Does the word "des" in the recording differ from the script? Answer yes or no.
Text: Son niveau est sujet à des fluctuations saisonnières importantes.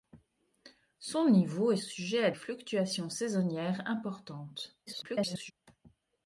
yes